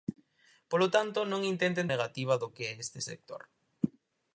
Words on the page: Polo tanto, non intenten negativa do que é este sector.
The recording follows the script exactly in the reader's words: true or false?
true